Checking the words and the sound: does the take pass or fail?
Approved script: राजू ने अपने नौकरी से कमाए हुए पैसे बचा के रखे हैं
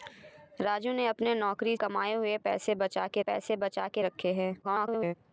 fail